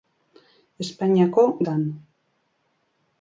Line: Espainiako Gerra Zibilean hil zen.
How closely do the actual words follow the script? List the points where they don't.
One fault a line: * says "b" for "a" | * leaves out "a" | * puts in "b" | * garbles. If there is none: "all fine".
* leaves out "Gerra Zibilean hil"